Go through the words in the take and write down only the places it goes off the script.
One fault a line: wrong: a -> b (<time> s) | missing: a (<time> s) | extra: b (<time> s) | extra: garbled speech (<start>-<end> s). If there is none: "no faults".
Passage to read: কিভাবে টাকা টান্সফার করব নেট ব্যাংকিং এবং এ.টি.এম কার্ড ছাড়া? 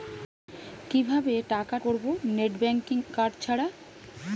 missing: টান্সফার (1.8 s)
missing: এবং এ.টি.এম (3.0 s)